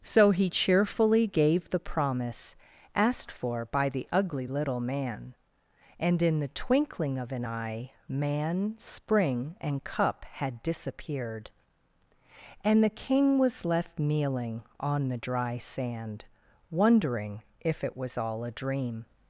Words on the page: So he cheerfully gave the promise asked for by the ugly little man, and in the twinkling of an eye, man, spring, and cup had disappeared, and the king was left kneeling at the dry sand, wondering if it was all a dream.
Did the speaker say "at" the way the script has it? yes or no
no